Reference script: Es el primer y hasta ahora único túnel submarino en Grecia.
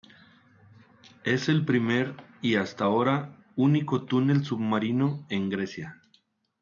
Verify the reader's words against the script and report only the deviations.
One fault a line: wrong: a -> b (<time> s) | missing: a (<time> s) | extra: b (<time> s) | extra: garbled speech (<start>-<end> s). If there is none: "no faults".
no faults